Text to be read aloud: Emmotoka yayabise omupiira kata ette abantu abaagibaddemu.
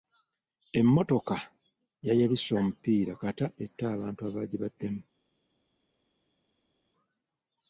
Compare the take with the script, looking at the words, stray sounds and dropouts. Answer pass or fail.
pass